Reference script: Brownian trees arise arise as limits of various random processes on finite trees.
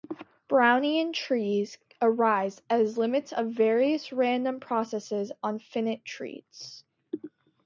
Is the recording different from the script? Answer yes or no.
yes